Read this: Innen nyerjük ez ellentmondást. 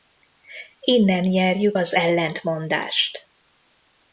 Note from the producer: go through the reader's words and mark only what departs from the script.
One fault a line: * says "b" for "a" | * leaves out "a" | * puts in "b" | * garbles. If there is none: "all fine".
* says "az" for "ez"